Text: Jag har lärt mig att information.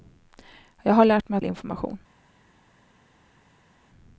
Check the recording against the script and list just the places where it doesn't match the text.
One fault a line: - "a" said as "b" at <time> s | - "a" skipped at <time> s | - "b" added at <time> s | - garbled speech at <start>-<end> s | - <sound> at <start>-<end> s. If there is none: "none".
none